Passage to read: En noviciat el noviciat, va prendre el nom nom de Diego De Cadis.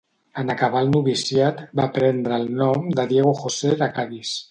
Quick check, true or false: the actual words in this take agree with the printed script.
false